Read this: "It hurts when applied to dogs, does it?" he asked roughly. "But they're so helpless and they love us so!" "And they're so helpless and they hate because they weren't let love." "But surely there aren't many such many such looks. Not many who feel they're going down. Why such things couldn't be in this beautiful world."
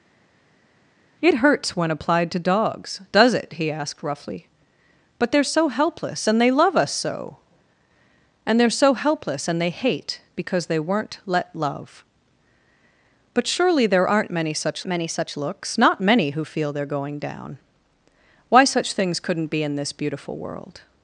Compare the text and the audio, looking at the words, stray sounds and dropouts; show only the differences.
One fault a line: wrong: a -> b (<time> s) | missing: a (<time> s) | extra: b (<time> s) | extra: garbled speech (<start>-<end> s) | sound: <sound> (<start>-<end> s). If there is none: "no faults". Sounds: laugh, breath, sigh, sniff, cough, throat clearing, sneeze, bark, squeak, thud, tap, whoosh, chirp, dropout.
no faults